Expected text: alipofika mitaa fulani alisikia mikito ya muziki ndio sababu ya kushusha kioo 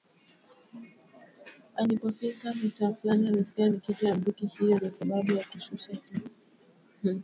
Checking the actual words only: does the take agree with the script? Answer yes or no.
no